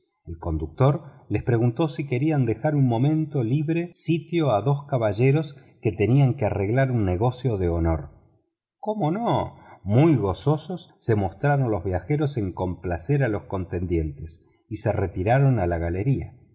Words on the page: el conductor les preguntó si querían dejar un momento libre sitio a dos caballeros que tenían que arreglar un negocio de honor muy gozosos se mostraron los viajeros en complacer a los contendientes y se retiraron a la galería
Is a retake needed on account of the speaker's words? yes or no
yes